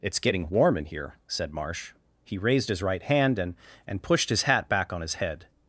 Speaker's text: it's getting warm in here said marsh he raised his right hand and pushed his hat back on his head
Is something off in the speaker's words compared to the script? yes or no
yes